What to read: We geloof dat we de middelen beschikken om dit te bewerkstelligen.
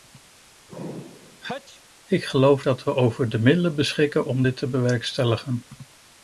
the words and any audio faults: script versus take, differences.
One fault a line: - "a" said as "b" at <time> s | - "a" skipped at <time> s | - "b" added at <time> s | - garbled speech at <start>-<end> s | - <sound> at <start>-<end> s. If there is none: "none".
- sneeze at 0.7-1.8 s
- "We" said as "Ik" at 2.0 s
- "over" added at 2.9 s